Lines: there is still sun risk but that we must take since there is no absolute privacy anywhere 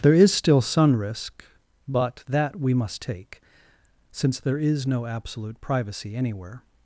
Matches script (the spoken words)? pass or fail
pass